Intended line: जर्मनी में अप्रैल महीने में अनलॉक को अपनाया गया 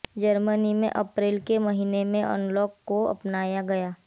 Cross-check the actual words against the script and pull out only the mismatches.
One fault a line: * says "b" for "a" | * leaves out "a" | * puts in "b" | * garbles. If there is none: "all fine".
* puts in "के"